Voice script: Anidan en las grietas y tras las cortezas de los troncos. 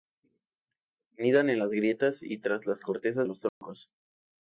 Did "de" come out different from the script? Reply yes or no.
yes